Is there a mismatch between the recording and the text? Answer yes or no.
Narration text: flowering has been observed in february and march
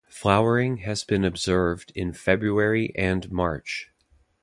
no